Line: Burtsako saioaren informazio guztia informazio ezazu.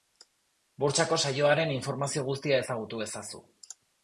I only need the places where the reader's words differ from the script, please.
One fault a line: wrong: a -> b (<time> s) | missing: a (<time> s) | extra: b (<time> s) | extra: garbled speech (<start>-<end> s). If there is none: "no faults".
wrong: informazio -> ezagutu (2.6 s)